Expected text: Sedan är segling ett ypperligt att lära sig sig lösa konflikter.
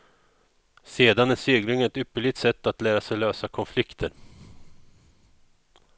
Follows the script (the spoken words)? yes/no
no